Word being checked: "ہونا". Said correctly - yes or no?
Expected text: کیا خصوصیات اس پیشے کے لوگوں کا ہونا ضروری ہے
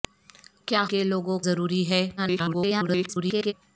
no